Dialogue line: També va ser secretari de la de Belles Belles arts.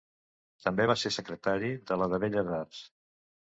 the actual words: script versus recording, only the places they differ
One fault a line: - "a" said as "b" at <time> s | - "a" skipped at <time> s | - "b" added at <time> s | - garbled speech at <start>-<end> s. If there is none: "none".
- "Belles" skipped at 2.6 s